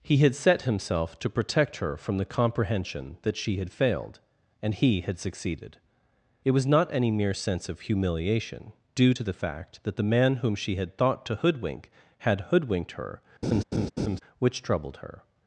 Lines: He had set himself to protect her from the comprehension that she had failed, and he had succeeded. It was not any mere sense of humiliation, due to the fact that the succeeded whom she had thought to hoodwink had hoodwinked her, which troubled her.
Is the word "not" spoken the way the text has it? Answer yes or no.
yes